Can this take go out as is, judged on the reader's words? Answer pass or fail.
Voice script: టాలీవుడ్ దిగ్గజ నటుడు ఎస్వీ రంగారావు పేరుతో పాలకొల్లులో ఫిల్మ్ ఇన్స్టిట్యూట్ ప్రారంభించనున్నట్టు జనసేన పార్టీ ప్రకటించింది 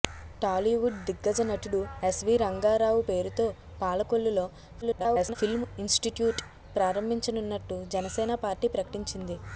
fail